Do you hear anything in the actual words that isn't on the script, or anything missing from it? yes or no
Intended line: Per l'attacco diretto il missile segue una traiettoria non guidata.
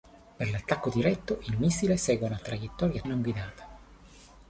no